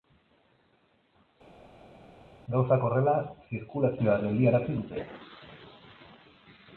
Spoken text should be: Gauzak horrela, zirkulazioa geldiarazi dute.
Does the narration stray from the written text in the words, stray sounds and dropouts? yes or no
no